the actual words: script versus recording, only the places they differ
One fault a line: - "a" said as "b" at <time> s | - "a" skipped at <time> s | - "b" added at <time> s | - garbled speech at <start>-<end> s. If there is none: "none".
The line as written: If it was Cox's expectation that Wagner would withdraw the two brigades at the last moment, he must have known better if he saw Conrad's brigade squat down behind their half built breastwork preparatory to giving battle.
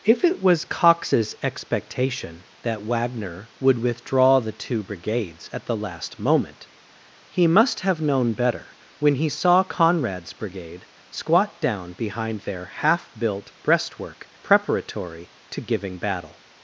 - "if" said as "when" at 9.0 s